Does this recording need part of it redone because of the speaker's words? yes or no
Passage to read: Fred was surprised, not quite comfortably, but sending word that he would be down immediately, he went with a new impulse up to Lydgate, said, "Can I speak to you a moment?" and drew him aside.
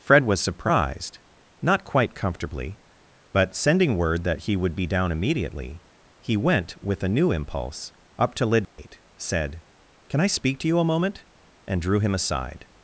no